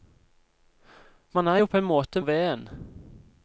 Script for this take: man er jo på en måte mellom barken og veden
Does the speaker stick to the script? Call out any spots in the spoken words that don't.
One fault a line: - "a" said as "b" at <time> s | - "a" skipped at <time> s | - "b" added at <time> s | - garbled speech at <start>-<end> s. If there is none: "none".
- "mellom barken" skipped at 2.2 s